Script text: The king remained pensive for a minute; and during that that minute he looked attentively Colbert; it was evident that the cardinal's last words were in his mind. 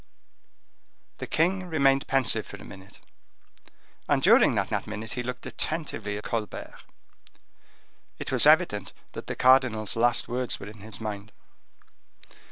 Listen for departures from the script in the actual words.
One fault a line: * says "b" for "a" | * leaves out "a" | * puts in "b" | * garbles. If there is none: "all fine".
all fine